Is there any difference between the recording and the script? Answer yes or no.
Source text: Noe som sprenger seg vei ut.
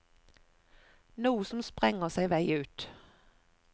no